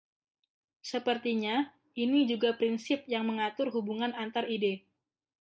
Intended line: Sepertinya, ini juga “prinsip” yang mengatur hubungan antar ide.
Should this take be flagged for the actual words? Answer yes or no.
no